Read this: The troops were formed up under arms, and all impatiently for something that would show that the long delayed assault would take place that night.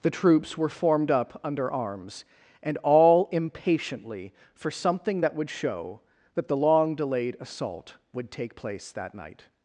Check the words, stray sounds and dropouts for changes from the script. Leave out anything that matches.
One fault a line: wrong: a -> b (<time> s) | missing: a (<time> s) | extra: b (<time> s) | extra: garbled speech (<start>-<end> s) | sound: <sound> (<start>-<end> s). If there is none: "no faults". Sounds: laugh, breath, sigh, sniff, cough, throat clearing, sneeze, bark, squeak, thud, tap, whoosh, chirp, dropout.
no faults